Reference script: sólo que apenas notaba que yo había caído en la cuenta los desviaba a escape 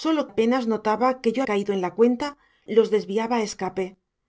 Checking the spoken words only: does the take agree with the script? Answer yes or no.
no